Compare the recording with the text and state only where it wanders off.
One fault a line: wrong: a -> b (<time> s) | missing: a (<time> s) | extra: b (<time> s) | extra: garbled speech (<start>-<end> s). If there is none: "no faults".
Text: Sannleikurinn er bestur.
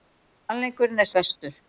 no faults